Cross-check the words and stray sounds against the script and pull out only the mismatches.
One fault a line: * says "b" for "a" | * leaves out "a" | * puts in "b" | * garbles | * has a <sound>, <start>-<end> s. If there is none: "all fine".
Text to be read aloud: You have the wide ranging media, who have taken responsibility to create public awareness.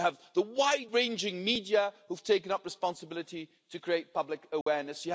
* puts in "up"
* has a dropout, 4.6-4.7 s